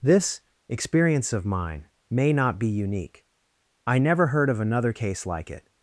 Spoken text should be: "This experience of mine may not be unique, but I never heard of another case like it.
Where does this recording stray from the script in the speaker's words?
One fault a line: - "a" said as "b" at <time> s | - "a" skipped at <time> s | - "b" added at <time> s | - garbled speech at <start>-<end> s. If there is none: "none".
- "but" skipped at 3.2 s